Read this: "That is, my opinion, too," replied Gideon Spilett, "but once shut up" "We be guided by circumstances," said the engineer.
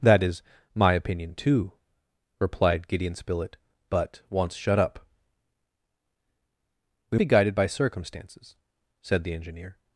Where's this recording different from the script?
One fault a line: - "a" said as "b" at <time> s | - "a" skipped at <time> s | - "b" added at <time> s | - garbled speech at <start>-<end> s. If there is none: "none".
none